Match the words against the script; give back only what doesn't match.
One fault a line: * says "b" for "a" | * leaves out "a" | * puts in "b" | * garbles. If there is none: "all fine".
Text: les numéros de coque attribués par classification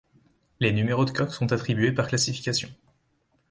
* puts in "sont"